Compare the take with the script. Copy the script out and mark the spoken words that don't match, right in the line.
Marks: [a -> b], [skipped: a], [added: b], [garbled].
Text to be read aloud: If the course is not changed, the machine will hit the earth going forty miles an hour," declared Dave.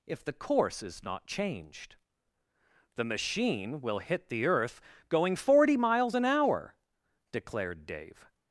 If the course is not changed, the machine will hit the earth going forty miles an hour," declared Dave.